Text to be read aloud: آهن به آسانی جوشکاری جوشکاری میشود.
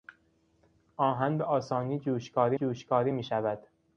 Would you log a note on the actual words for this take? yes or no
no